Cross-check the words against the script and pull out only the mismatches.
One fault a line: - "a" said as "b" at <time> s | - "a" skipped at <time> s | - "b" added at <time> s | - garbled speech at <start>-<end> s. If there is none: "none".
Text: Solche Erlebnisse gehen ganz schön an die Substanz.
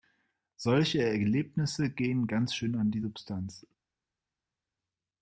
none